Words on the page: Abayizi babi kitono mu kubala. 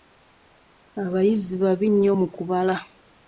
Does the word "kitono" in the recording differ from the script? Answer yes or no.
yes